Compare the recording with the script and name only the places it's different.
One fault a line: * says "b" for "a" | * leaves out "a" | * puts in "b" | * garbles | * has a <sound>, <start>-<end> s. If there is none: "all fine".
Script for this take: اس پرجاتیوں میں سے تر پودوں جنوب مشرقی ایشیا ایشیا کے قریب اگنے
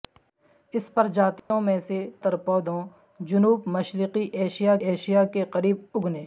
* has a dropout, 1.4-1.5 s